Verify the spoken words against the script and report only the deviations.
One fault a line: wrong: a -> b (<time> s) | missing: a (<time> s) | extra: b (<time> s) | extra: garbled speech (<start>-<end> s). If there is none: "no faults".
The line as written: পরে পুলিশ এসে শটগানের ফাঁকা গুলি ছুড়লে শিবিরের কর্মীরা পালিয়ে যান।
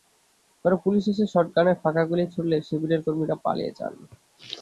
no faults